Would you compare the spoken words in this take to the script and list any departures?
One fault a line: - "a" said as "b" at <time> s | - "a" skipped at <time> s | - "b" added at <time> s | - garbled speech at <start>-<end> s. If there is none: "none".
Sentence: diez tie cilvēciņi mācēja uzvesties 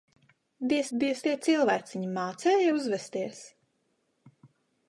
- "diez" added at 1.0 s